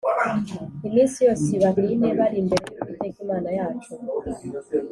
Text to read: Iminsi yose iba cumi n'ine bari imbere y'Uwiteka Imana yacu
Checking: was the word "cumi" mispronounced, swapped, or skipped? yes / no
yes